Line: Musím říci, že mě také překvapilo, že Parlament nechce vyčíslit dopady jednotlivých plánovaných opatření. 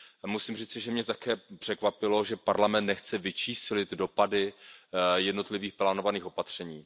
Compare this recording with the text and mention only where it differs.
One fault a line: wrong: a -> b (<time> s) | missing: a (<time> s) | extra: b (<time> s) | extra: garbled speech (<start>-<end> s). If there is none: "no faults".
no faults